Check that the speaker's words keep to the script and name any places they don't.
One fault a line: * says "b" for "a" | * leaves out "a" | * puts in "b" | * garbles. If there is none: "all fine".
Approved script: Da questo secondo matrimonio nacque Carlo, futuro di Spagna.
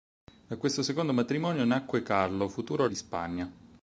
all fine